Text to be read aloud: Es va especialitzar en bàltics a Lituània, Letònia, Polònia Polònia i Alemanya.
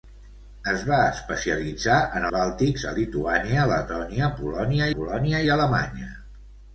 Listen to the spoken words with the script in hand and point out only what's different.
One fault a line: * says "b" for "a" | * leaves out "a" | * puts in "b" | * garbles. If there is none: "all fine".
all fine